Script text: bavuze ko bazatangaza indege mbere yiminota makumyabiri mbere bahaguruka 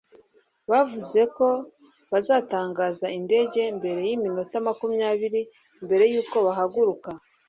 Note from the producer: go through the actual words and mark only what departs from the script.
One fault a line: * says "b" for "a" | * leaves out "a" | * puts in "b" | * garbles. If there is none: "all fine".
* puts in "yuko"